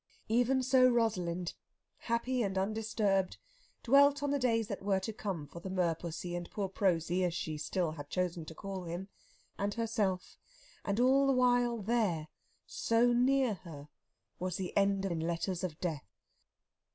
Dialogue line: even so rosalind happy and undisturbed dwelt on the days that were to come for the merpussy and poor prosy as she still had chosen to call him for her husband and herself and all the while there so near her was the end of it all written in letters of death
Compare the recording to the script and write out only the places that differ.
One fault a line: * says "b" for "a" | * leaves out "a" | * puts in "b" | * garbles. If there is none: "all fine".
* leaves out "for her husband"
* leaves out "it all written"